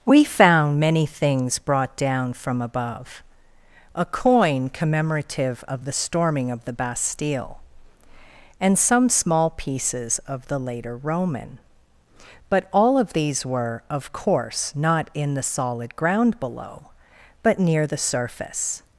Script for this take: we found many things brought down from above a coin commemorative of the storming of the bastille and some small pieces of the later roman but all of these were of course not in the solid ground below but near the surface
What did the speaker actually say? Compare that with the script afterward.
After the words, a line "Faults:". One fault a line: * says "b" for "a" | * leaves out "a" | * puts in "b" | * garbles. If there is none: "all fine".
we found many things brought down from above a coin commemorative of the storming of the bastille and some small pieces of the later roman but all of these were of course not in the solid ground below but near the surface
Faults:
all fine